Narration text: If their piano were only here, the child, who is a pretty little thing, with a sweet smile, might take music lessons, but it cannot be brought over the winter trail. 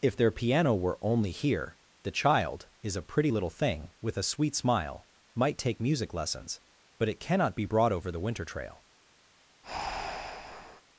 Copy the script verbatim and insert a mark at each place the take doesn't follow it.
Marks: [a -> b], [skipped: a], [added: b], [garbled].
If their piano were only here, the child, [skipped: who] is a pretty little thing, with a sweet smile, might take music lessons, but it cannot be brought over the winter trail.